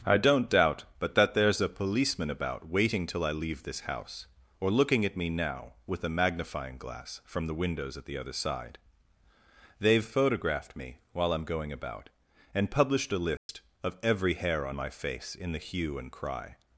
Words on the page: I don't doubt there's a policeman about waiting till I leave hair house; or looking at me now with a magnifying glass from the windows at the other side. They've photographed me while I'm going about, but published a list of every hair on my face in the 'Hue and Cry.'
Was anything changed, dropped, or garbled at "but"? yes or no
yes